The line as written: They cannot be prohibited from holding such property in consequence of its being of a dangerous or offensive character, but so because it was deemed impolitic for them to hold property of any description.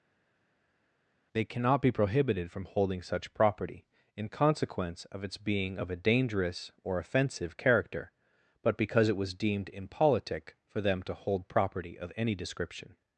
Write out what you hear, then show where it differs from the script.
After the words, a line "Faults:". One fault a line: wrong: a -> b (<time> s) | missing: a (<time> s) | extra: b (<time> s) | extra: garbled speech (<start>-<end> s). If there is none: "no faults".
They cannot be prohibited from holding such property in consequence of its being of a dangerous or offensive character, but because it was deemed impolitic for them to hold property of any description.
Faults:
missing: so (8.8 s)